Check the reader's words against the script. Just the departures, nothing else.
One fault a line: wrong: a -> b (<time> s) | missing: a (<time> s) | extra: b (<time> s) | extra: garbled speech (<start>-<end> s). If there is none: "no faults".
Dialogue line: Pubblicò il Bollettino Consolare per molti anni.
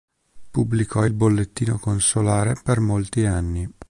no faults